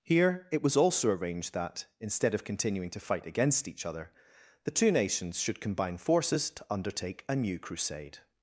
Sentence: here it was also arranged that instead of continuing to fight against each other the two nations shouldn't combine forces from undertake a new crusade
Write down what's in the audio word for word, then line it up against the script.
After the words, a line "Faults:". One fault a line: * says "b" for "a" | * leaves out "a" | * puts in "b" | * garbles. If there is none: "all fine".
here it was also arranged that instead of continuing to fight against each other the two nations should combine forces to undertake a new crusade
Faults:
* says "should" for "shouldn't"
* says "to" for "from"